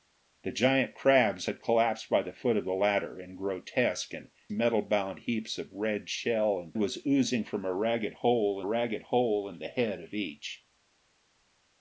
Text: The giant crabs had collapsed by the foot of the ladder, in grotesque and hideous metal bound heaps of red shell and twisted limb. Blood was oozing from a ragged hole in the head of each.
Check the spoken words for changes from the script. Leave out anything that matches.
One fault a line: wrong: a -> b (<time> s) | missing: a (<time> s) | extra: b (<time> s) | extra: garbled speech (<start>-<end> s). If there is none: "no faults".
missing: hideous (4.3 s)
missing: twisted limb Blood (6.7 s)
extra: ragged hole (8.6 s)